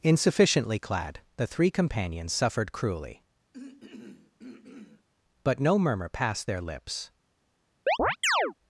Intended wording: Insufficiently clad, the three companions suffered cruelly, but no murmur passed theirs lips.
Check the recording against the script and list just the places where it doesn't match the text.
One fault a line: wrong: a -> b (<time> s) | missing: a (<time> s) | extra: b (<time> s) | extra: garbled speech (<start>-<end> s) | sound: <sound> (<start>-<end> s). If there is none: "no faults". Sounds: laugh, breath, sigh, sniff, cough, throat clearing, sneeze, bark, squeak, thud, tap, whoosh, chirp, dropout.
sound: throat clearing (3.5-5.1 s)
wrong: theirs -> their (6.5 s)
sound: chirp (7.9-8.5 s)